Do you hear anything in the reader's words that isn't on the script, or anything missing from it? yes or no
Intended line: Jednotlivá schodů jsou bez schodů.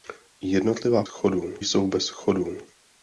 no